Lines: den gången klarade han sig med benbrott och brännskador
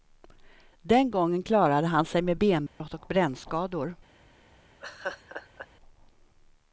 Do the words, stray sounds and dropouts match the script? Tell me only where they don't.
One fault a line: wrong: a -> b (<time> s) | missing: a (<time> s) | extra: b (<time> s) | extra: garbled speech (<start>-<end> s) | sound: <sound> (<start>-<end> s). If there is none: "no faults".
sound: dropout (2.7-2.8 s)
sound: laugh (4.8-5.7 s)